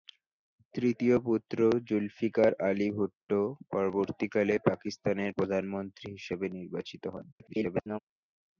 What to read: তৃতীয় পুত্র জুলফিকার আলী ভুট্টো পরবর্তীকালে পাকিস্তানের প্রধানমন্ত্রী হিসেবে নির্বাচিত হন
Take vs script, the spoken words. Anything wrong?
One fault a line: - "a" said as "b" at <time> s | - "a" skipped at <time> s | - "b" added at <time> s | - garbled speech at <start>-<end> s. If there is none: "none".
- garbled speech at 7.3-8.0 s